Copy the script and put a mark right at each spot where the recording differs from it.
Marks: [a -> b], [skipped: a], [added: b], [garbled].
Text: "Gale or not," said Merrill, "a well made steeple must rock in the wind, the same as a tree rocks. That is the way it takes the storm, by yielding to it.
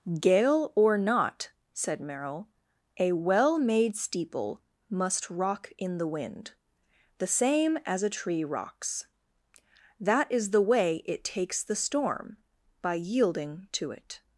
"Gale or not," said Merrill, "a well made steeple must rock in the wind, the same as a tree rocks. That is the way it takes the storm, by yielding to it.